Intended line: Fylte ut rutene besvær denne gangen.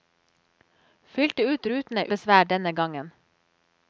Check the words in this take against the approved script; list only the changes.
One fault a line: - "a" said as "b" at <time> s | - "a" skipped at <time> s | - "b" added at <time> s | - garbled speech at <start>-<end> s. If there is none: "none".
none